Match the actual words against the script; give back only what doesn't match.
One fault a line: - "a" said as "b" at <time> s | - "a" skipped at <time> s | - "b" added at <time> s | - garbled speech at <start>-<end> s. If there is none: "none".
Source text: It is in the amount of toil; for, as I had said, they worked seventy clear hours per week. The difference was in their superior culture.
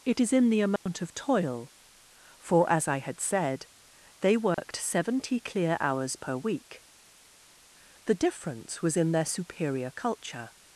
none